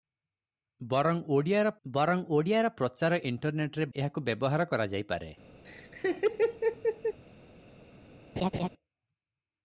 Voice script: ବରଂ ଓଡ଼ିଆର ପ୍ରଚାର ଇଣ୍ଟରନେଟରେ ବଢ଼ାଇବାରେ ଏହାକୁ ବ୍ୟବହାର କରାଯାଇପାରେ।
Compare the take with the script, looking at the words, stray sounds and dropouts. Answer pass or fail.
fail